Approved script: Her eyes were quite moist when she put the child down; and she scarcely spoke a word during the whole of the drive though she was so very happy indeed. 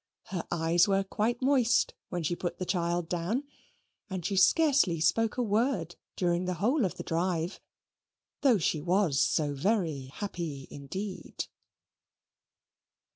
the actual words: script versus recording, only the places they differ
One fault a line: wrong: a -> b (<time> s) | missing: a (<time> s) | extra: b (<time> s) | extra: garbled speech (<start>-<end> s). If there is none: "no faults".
no faults